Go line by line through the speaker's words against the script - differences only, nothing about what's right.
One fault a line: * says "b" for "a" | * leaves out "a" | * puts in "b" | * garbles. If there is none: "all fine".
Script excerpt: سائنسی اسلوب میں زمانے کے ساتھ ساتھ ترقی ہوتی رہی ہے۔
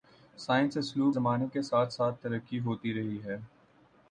* leaves out "میں"